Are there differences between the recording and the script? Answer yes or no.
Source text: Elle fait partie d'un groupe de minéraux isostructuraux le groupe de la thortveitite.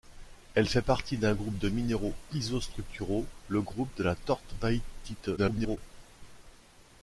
yes